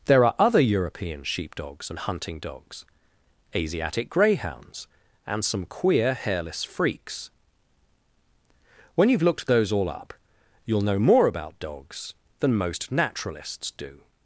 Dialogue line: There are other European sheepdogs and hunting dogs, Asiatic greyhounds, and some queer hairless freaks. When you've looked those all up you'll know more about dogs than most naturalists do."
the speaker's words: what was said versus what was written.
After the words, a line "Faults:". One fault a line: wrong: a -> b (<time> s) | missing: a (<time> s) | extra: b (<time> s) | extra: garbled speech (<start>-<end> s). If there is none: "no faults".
There are other European sheepdogs and hunting dogs, Asiatic greyhounds, and some queer hairless freaks. When you've looked those all up you'll know more about dogs than most naturalists do."
Faults:
no faults